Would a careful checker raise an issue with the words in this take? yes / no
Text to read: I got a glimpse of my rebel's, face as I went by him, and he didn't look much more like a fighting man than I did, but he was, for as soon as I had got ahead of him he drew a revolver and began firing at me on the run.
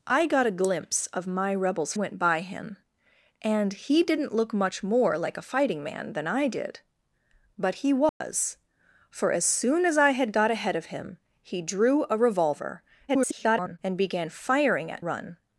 yes